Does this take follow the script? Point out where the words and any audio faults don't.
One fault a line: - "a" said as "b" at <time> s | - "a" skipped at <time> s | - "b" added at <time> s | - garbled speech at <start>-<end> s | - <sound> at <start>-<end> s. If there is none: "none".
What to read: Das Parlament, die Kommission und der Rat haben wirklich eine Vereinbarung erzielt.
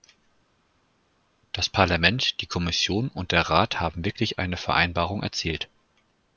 none